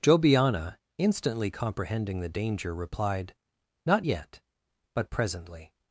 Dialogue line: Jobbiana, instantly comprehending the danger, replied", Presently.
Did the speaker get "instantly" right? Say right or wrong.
right